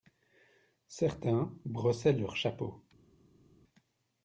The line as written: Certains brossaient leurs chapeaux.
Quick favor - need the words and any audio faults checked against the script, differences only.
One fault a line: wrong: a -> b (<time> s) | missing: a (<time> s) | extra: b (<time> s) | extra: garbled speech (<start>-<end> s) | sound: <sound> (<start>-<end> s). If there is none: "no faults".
no faults